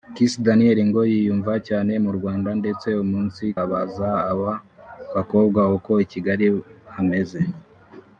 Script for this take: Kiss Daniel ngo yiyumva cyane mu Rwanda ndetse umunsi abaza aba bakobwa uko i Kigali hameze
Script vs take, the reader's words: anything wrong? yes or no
no